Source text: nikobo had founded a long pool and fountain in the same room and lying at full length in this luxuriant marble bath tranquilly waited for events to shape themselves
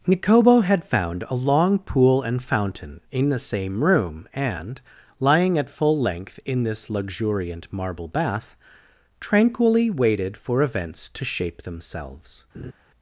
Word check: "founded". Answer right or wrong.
wrong